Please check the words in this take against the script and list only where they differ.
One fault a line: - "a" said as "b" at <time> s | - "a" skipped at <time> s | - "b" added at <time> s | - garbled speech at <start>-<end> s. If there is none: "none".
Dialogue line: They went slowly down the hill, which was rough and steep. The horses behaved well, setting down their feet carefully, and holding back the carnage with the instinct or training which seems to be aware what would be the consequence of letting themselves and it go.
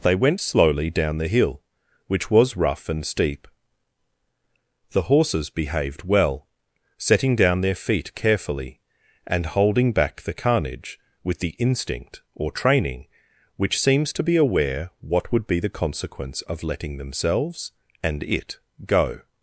none